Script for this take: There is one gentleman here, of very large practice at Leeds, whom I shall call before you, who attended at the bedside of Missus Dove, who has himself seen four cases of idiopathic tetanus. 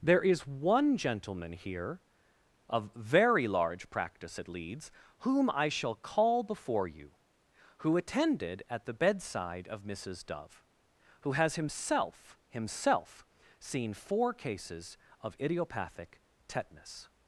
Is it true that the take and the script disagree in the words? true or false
true